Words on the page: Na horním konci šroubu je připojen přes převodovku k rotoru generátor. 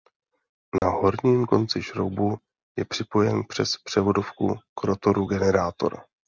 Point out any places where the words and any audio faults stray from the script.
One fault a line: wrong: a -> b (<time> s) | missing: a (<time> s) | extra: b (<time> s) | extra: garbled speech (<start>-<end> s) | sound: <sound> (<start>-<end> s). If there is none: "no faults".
sound: dropout (0.8-0.8 s)